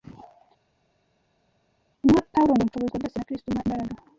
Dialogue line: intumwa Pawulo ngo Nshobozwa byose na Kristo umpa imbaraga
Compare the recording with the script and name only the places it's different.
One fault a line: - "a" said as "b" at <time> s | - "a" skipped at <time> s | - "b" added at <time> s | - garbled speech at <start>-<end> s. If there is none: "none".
none